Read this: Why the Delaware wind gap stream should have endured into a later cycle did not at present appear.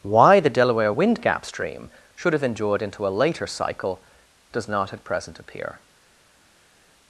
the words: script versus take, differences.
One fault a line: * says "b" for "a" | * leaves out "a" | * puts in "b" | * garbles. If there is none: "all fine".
* says "does" for "did"